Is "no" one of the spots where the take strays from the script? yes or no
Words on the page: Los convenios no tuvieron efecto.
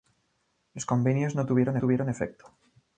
no